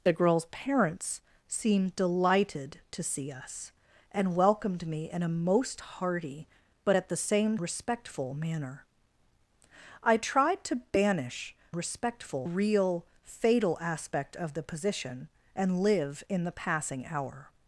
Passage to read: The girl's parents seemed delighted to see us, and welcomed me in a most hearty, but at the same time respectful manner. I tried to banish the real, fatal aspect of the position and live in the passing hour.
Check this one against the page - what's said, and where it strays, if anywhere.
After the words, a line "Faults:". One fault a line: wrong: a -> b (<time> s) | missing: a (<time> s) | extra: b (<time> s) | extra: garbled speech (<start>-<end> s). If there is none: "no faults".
The girl's parents seemed delighted to see us, and welcomed me in a most hearty, but at the same respectful manner. I tried to banish respectful real, fatal aspect of the position and live in the passing hour.
Faults:
missing: time (7.6 s)
wrong: the -> respectful (11.7 s)